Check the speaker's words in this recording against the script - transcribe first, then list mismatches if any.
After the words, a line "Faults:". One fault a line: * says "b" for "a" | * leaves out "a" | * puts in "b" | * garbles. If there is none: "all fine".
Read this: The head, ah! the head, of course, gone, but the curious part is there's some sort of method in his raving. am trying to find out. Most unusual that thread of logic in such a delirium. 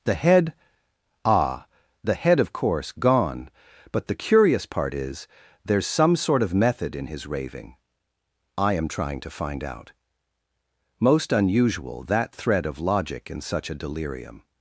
The head, ah! the head, of course, gone, but the curious part is there's some sort of method in his raving. I am trying to find out. Most unusual that thread of logic in such a delirium.
Faults:
* puts in "I"